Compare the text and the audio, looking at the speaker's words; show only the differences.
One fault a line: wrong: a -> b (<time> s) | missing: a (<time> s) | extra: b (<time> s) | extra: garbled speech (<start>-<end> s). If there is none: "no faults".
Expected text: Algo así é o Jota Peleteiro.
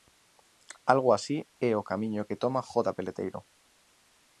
extra: camiño que toma (1.9 s)